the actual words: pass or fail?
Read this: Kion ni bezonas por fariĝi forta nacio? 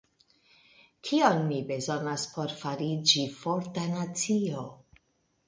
pass